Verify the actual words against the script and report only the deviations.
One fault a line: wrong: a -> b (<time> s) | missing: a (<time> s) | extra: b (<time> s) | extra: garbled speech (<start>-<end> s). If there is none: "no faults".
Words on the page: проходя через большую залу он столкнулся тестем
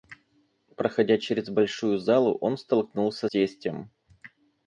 no faults